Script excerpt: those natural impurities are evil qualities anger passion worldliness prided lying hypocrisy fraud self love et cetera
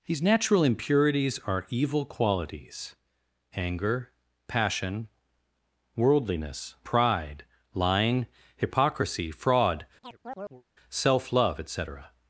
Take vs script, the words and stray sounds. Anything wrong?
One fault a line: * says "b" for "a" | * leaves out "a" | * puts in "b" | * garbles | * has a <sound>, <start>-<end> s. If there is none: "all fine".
* says "these" for "those"
* says "pride" for "prided"
* has a chirp, 10.0-10.6 s